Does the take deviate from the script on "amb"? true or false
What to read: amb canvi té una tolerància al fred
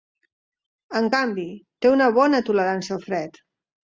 true